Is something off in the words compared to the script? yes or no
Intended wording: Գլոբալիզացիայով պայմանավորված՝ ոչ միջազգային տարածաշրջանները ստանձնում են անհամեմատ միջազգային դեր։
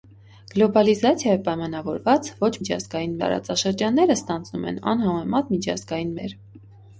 no